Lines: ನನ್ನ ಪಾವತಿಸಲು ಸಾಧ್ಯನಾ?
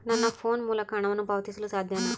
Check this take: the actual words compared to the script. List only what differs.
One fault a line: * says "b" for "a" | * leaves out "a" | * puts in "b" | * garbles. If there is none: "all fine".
* puts in "ಫೋನ್ ಮೂಲಕ ಹಣವನ್ನು"